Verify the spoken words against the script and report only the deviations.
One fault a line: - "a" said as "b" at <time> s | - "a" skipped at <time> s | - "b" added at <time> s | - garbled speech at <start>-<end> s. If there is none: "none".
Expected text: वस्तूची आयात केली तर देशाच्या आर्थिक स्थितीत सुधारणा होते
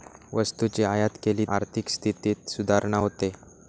- "तर देशाच्या" skipped at 1.4 s